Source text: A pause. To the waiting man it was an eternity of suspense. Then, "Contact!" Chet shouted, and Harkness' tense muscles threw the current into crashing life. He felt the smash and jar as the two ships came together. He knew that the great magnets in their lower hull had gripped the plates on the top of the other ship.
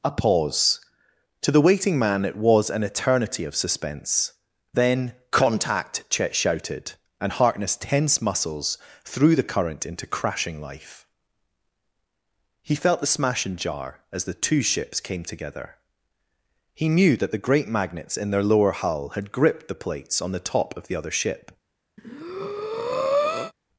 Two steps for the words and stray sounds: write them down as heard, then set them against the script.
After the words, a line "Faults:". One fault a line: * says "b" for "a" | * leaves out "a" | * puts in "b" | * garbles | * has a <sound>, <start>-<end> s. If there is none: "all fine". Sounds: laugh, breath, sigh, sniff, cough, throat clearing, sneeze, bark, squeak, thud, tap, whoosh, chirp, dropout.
A pause. To the waiting man it was an eternity of suspense. Then, "Contact!" Chet shouted, and Harkness' tense muscles threw the current into crashing life. He felt the smash and jar as the two ships came together. He knew that the great magnets in their lower hull had gripped the plates on the top of the other ship.
Faults:
* has a breath, 22.0-23.5 s